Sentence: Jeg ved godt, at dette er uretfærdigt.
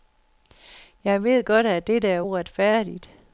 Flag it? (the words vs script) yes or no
no